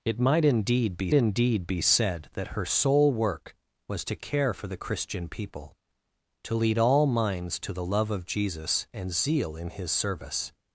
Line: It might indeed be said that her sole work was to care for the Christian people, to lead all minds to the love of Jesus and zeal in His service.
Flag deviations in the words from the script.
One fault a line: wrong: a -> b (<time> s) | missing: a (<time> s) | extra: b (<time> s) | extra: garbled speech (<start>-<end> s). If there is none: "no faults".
extra: indeed be (1.1 s)